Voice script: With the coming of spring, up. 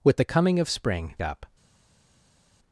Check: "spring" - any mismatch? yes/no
no